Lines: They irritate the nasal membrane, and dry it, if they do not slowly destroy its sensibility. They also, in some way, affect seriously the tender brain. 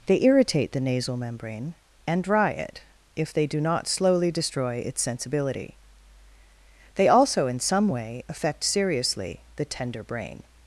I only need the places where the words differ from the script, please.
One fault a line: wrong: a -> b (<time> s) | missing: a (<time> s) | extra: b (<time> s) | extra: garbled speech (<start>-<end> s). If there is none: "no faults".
no faults